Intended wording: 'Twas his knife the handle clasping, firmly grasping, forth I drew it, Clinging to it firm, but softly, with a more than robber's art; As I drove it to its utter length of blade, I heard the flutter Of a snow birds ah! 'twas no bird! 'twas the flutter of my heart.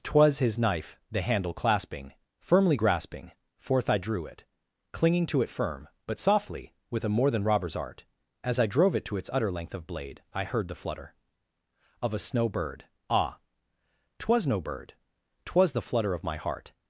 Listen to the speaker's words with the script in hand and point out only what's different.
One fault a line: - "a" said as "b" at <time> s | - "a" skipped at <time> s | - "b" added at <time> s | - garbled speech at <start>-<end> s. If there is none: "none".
- "birds" said as "bird" at 12.5 s